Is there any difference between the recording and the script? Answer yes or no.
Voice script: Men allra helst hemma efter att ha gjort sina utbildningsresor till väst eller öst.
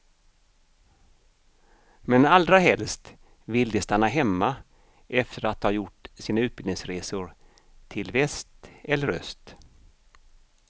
yes